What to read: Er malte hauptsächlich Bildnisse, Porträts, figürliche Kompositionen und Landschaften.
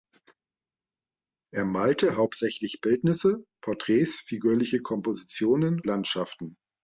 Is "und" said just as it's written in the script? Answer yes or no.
no